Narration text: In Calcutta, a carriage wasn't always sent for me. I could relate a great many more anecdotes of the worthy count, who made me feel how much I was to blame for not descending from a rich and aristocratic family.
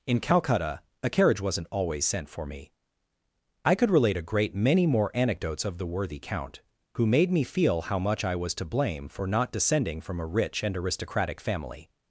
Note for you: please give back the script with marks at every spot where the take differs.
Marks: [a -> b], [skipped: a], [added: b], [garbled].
In Calcutta, a carriage wasn't always sent for me. I could relate a great many more anecdotes of the worthy count, who made me feel how much I was to blame for not descending from a rich and aristocratic family.